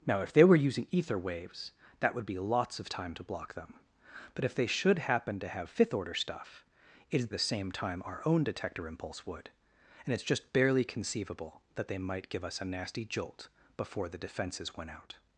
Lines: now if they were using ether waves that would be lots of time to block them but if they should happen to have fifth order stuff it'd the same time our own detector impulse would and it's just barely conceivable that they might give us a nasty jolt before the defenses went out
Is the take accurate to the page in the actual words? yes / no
yes